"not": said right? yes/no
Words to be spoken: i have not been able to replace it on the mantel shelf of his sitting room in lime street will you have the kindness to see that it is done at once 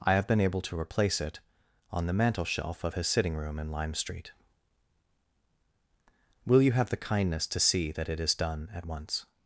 no